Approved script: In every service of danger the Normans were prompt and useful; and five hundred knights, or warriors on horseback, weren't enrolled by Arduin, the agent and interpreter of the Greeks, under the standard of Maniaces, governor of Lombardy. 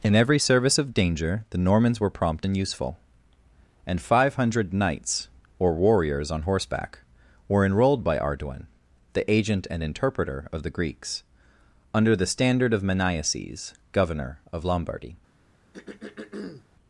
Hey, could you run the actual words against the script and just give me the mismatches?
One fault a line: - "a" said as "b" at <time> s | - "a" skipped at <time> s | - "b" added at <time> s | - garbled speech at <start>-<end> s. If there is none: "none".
- "weren't" said as "were" at 7.5 s